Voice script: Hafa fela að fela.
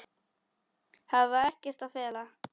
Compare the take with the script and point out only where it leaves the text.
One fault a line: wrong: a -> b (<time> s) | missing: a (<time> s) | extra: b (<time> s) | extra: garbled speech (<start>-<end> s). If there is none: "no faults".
wrong: fela -> ekkert (1.5 s)